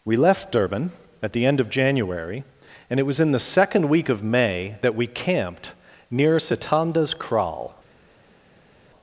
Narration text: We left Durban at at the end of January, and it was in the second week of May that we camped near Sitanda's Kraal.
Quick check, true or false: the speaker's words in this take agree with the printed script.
false